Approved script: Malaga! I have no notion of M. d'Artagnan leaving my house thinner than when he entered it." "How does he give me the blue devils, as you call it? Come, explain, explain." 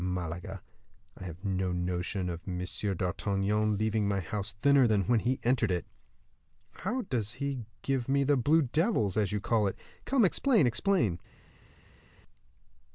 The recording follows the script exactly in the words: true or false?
true